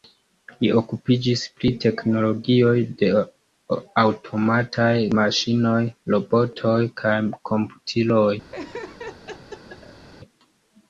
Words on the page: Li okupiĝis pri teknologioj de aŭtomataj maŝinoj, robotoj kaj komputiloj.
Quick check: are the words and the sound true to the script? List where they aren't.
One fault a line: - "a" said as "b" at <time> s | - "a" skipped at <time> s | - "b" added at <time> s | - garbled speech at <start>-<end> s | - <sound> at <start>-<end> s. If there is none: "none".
- laugh at 8.5-10.1 s